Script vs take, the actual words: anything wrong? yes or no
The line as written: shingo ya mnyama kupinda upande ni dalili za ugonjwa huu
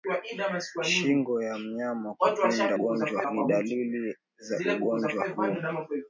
yes